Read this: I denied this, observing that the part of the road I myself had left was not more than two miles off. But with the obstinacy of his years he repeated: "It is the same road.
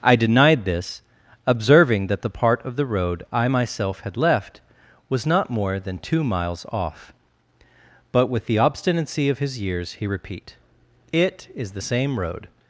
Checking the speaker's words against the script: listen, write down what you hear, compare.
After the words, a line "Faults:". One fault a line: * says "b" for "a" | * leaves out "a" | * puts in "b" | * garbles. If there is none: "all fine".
I denied this, observing that the part of the road I myself had left was not more than two miles off. But with the obstinacy of his years he repeat: "It is the same road.
Faults:
* says "repeat" for "repeated"